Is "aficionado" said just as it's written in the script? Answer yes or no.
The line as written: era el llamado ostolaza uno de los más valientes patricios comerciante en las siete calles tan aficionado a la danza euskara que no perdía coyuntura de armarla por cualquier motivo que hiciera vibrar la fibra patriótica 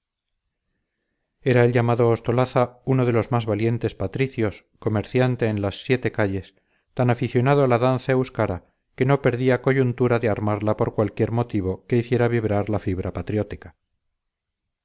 yes